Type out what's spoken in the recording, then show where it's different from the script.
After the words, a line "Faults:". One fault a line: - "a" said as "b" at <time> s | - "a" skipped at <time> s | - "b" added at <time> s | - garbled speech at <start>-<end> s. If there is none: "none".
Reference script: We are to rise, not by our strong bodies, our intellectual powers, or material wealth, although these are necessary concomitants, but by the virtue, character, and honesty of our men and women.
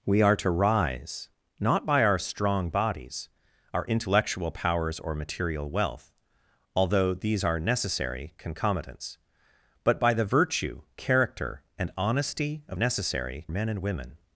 We are to rise, not by our strong bodies, our intellectual powers, or material wealth, although these are necessary concomitants, but by the virtue, character, and honesty of necessary men and women.
Faults:
- "our" said as "necessary" at 12.7 s